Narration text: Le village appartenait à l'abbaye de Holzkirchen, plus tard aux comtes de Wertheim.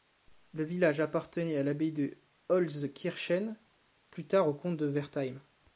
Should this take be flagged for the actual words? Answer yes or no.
no